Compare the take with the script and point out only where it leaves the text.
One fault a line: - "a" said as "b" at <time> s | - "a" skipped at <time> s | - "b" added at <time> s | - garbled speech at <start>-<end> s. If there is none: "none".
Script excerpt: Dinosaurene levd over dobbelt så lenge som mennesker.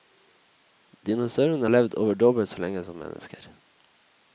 none